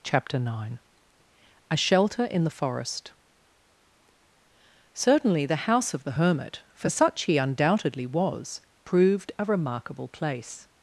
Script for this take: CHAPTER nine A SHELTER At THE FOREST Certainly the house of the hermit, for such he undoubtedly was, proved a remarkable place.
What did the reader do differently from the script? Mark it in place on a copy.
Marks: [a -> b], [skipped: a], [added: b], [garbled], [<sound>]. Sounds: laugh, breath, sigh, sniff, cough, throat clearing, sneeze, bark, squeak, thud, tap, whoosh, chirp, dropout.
CHAPTER nine A SHELTER [At -> IN] THE FOREST Certainly the house of the hermit, for such he undoubtedly was, proved a remarkable place.